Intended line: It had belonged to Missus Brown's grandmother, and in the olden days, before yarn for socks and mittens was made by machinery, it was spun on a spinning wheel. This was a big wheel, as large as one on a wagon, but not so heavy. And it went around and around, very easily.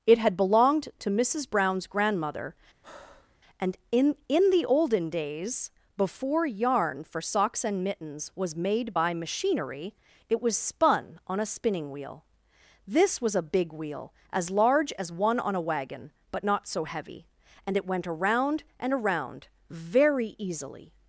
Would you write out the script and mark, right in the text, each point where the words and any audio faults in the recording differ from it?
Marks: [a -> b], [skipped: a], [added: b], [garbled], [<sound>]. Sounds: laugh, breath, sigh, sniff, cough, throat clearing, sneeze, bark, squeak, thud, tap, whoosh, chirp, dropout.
It had belonged to Missus Brown's grandmother, [breath] and in [added: in] the olden days, before yarn for socks and mittens was made by machinery, it was spun on a spinning wheel. This was a big wheel, as large as one on a wagon, but not so heavy. And it went around and around, very easily.